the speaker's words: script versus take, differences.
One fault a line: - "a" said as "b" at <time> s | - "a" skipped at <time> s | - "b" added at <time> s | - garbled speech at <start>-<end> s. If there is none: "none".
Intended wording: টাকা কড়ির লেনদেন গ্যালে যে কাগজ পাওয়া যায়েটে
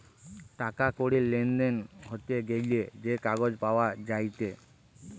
- "হতে" added at 2.0 s